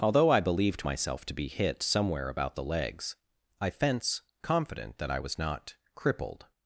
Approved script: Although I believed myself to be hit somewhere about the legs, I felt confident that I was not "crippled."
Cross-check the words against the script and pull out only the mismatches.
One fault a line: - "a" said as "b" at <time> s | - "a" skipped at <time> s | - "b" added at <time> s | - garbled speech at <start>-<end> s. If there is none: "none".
- "felt" said as "fence" at 3.7 s